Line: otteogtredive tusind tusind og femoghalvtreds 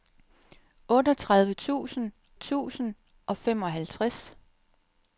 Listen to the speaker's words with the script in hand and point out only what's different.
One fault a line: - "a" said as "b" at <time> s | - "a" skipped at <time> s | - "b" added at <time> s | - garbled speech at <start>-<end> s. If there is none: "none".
none